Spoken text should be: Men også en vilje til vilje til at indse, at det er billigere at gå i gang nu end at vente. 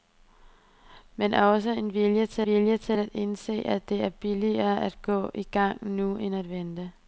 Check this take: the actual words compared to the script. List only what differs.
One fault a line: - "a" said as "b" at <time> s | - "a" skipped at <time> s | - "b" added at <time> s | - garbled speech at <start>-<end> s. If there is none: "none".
none